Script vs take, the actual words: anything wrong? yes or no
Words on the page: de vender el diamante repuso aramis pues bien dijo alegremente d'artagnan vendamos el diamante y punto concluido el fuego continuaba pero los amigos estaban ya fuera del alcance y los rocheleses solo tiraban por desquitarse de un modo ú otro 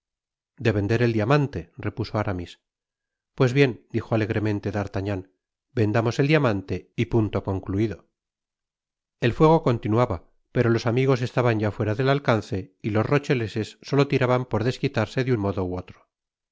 no